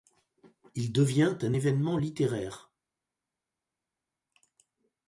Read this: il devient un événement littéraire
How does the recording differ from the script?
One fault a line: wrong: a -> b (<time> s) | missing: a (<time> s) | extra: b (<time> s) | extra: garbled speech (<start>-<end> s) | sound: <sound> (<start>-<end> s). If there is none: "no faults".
no faults